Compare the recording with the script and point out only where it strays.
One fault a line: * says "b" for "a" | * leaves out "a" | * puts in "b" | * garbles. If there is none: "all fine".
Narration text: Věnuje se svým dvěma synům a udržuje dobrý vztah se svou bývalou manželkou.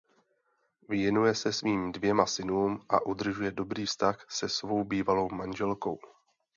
all fine